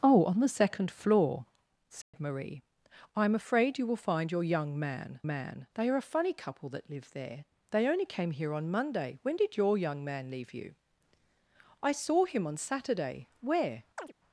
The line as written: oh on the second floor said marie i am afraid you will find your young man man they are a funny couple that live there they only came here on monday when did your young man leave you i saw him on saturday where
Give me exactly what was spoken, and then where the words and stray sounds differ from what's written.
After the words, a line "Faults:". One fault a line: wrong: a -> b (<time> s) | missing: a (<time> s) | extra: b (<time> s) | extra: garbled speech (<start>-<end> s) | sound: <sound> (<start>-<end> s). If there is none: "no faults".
oh on the second floor said marie i am afraid you will find your young man man they are a funny couple that live there they only came here on monday when did your young man leave you i saw him on saturday where
Faults:
sound: dropout (2.0-2.1 s)
sound: chirp (14.0-14.1 s)